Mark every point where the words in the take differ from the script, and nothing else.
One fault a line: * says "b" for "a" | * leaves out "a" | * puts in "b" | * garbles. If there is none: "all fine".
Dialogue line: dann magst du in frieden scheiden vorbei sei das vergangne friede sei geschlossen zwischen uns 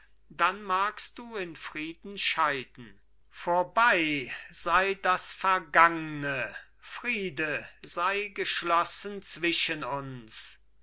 all fine